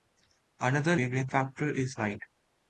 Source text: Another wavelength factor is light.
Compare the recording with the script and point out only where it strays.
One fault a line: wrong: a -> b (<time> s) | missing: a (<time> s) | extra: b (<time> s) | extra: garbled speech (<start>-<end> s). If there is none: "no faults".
no faults